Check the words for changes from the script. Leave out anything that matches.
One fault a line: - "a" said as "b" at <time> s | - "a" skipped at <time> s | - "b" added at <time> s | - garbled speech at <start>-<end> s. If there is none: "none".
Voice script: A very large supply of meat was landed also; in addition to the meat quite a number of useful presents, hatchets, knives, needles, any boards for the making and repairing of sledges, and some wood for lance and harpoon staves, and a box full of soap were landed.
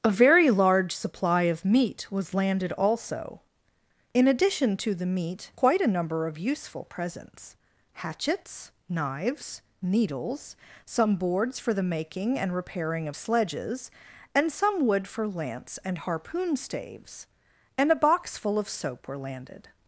- "any" said as "some" at 10.8 s